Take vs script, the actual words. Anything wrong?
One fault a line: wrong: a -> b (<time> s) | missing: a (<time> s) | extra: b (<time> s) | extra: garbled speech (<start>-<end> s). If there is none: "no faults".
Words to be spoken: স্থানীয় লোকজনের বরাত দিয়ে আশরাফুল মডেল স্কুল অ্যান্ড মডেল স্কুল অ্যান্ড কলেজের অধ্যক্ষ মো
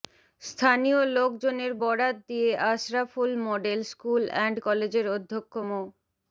missing: মডেল স্কুল অ্যান্ড (4.6 s)